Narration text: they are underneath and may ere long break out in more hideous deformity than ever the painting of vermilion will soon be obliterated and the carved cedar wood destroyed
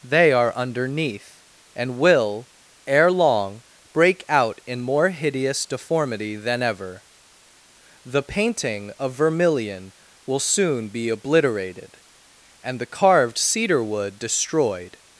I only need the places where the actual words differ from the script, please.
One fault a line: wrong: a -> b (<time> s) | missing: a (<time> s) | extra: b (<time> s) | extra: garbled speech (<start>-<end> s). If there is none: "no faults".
wrong: may -> will (2.0 s)